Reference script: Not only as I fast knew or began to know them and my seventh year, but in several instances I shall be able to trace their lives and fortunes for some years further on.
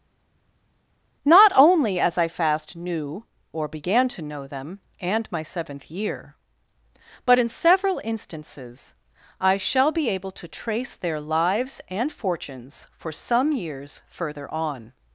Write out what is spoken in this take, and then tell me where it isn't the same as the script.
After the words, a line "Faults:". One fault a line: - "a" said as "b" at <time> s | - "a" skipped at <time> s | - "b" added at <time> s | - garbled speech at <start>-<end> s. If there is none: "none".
Not only as I fast knew or began to know them and my seventh year, but in several instances I shall be able to trace their lives and fortunes for some years further on.
Faults:
none